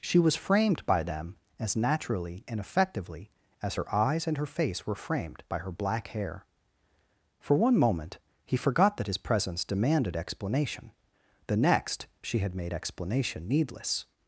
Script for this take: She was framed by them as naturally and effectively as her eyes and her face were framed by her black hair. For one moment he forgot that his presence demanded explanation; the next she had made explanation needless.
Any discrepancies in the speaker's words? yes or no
no